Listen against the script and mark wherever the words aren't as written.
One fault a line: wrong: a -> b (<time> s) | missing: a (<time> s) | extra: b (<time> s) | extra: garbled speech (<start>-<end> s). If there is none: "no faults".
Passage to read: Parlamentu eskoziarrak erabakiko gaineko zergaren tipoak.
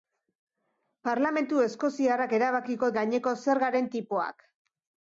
no faults